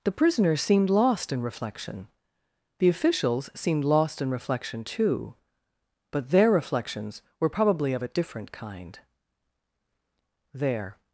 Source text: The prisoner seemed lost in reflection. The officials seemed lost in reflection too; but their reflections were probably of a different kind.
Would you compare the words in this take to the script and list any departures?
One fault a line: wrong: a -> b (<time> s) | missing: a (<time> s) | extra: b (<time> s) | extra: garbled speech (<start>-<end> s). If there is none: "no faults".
extra: There (10.5 s)